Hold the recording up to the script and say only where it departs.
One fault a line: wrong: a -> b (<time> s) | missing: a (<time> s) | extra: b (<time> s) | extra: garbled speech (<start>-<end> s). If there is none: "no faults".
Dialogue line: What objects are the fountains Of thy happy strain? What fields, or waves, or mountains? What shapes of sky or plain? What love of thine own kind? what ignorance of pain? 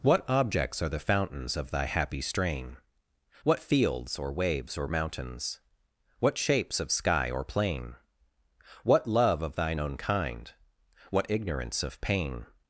no faults